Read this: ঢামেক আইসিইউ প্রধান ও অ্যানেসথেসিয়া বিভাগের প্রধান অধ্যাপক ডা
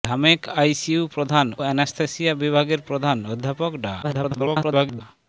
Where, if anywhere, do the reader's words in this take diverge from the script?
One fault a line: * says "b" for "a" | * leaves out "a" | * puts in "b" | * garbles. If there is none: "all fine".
* leaves out "ও"
* garbles